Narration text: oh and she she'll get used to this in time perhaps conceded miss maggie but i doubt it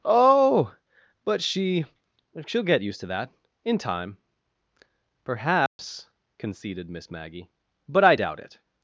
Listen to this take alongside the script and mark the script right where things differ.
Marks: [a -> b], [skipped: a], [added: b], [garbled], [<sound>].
oh [and -> but] she she'll get used to [this -> that] in time perhaps [dropout] conceded miss maggie but i doubt it